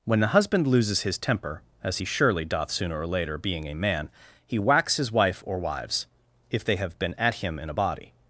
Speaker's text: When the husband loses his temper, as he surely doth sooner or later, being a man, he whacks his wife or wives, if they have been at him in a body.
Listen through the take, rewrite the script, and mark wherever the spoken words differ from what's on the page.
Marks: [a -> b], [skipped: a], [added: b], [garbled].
When the husband loses his temper, as he surely doth sooner or later, being a man, he whacks his wife or wives, if they have been at him in a body.